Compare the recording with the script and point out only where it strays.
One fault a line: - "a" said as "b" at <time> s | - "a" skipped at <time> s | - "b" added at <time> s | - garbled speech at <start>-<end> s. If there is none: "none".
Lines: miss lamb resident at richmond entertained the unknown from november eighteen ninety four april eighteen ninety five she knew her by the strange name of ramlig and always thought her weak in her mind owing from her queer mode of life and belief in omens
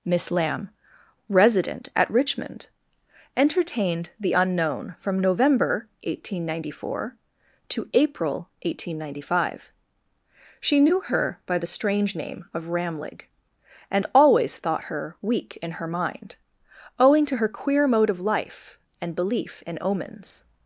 - "to" added at 7.7 s
- "from" said as "to" at 17.3 s